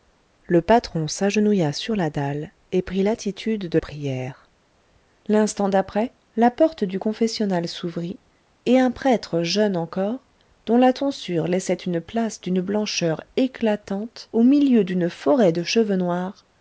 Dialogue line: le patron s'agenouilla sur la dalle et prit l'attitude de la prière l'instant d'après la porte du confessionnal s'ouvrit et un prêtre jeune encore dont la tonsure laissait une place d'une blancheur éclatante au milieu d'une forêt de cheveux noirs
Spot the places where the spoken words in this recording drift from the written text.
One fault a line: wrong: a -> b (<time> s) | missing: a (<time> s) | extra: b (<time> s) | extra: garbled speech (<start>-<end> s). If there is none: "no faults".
missing: la (3.8 s)